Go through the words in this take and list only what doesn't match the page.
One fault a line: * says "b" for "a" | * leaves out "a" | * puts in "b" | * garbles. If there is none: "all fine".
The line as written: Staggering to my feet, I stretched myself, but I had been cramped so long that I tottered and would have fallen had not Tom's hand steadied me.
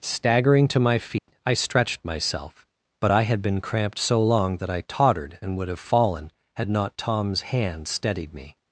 all fine